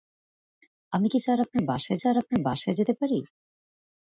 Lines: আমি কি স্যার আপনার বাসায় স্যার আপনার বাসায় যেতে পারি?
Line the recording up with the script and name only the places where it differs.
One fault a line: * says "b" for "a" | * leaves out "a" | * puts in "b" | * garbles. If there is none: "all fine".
all fine